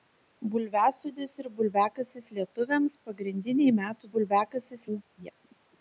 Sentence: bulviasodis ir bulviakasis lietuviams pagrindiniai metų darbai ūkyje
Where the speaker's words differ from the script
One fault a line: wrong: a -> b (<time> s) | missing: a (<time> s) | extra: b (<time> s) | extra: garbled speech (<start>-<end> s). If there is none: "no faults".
wrong: darbai -> bulviakasis (4.2 s)